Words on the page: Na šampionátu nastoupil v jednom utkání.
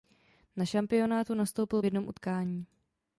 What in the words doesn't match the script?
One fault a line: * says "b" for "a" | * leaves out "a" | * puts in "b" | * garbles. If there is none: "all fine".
all fine